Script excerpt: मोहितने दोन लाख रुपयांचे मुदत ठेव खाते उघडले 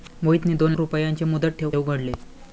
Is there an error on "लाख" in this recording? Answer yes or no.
yes